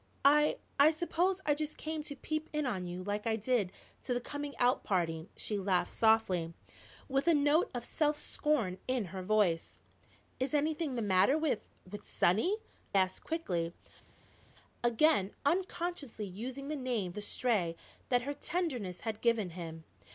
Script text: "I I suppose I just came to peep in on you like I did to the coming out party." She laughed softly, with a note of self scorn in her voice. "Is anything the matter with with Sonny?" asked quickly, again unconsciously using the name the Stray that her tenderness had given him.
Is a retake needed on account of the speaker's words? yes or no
no